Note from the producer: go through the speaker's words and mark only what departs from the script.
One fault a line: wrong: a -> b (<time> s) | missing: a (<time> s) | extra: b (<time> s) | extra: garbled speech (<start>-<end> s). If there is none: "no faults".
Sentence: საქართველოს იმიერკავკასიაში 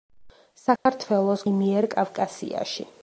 no faults